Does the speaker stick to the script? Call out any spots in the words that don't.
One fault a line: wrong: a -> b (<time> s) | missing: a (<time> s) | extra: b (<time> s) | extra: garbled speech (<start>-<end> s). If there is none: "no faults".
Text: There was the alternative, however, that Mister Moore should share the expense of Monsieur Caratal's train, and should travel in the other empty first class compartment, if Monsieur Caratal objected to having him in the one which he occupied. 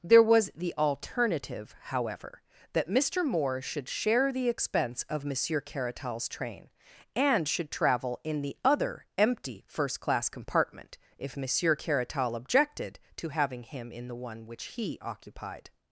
no faults